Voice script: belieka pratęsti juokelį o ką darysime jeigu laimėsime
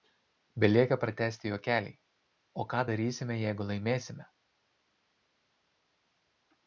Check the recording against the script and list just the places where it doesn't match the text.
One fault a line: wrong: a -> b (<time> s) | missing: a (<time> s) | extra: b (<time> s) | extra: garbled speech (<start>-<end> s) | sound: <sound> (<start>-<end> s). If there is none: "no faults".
no faults